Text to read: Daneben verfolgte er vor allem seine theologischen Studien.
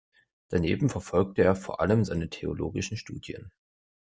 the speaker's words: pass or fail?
pass